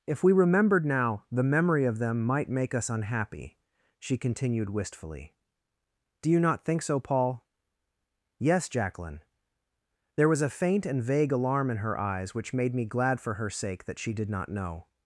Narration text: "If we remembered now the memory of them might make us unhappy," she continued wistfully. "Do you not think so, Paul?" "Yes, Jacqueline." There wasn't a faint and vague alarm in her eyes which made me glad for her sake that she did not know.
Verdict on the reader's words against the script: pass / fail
fail